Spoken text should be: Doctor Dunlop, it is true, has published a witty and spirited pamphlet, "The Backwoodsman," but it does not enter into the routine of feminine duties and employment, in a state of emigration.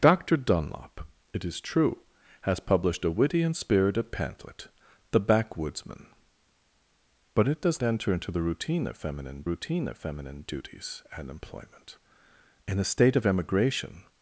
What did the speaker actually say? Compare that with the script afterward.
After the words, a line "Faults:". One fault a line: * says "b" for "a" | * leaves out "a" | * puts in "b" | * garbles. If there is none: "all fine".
Doctor Dunlop, it is true, has published a witty and spirited pamphlet, "The Backwoodsman," but it does enter into the routine of feminine routine of feminine duties and employment, in a state of emigration.
Faults:
* leaves out "not"
* puts in "routine of feminine"